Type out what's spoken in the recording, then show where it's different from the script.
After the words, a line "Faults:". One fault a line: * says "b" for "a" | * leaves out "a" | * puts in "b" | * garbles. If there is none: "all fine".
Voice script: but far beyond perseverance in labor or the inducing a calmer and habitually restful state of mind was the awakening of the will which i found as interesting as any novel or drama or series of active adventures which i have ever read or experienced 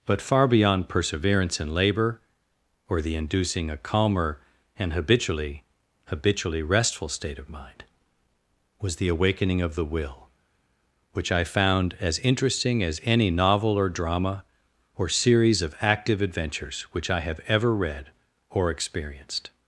but far beyond perseverance in labor or the inducing a calmer and habitually habitually restful state of mind was the awakening of the will which i found as interesting as any novel or drama or series of active adventures which i have ever read or experienced
Faults:
* puts in "habitually"